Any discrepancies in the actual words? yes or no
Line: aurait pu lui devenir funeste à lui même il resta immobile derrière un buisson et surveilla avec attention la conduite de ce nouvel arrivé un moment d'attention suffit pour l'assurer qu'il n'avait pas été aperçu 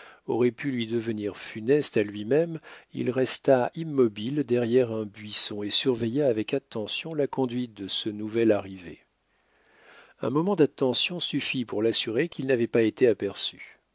no